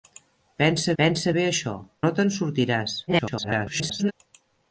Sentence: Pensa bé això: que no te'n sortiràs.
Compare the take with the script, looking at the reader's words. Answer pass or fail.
fail